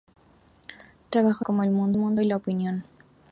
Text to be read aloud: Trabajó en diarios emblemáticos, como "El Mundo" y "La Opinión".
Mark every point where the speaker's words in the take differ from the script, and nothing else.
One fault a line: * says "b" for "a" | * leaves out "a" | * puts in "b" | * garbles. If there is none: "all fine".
* leaves out "en diarios emblemáticos"
* puts in "Mundo"